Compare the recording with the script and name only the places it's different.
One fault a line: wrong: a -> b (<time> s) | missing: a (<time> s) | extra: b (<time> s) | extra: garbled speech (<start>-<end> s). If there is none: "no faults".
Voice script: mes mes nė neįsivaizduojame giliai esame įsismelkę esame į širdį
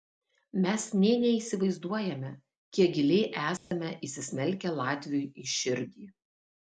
missing: mes (0.8 s)
extra: kiek (2.8 s)
wrong: esame -> latviui (4.8 s)